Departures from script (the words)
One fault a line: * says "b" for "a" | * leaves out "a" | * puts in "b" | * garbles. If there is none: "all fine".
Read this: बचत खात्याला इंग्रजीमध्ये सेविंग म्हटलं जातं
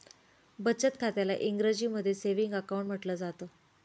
* puts in "अकाउंट"